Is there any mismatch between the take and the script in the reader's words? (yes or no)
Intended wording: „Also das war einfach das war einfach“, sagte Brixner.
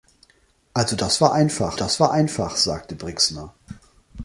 no